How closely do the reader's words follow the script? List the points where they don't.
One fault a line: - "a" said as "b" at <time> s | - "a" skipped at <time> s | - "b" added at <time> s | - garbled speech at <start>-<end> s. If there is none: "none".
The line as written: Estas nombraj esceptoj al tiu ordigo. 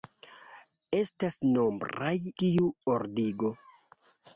- "esceptoj al" skipped at 2.1 s